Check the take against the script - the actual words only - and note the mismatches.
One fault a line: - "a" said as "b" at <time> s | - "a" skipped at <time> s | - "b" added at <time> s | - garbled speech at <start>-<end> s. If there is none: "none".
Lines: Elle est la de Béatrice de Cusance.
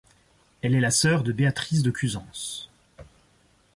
- "sœur" added at 0.9 s